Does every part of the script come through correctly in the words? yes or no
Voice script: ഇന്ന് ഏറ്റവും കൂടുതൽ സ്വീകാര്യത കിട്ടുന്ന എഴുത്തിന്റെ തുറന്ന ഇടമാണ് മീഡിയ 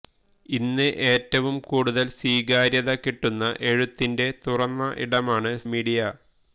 yes